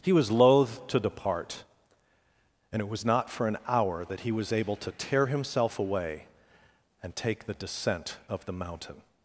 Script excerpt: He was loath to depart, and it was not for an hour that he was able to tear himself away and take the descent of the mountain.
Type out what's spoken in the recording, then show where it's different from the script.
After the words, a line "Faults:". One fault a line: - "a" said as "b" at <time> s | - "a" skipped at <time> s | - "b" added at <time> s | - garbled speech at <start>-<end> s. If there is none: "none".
He was loath to depart, and it was not for an hour that he was able to tear himself away and take the descent of the mountain.
Faults:
none